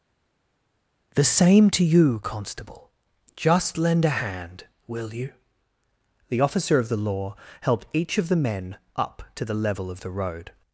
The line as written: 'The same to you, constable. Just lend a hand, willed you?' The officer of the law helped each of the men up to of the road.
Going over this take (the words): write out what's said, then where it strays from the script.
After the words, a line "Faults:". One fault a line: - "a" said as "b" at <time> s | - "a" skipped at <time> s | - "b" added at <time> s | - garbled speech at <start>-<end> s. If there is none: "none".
'The same to you, constable. Just lend a hand, will you?' The officer of the law helped each of the men up to the level of the road.
Faults:
- "willed" said as "will" at 4.9 s
- "the level" added at 9.4 s